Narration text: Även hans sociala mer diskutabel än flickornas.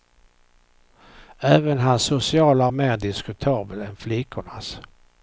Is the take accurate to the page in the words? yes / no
yes